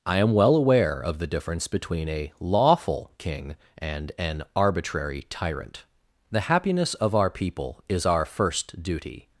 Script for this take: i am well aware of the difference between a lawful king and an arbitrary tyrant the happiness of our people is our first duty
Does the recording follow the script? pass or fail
pass